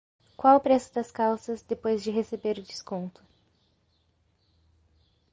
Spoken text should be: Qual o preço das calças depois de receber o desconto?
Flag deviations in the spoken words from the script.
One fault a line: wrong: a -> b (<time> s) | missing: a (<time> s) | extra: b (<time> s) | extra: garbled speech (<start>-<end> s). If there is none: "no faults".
no faults